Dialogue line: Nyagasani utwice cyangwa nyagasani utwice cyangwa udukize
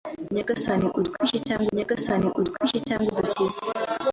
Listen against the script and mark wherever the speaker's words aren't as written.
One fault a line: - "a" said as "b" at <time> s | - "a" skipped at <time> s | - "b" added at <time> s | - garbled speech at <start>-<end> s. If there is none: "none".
none